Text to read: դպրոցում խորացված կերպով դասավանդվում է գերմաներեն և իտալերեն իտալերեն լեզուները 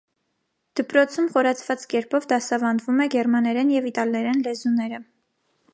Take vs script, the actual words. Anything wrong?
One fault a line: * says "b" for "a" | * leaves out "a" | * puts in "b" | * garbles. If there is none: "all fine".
* leaves out "իտալերեն"